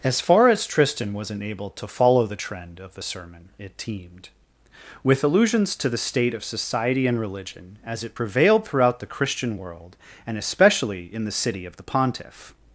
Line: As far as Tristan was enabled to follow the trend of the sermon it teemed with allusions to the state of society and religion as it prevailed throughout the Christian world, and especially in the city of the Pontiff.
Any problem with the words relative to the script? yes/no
no